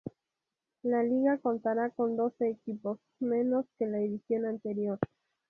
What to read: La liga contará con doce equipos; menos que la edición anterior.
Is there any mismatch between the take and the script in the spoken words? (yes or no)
no